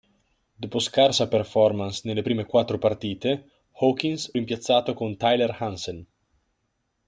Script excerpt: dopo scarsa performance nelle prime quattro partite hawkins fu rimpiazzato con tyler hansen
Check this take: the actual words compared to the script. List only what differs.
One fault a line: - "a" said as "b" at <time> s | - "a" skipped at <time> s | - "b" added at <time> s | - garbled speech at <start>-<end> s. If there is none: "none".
- "fu" skipped at 4.3 s